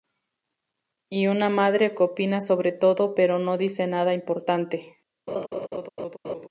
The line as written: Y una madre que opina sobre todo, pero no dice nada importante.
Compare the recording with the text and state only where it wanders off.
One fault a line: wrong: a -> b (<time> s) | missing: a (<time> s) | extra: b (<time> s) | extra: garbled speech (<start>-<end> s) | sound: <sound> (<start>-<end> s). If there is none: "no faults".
sound: laugh (5.3-6.5 s)